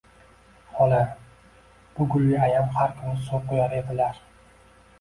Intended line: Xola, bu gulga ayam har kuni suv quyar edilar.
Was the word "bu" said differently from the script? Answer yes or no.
no